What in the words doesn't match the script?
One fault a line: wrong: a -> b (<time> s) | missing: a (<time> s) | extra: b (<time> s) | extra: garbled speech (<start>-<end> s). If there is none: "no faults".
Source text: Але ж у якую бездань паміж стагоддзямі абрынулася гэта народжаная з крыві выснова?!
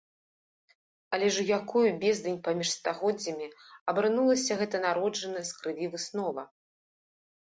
no faults